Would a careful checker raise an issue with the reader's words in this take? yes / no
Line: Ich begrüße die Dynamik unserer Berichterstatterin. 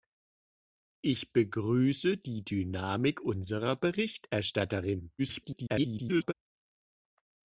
yes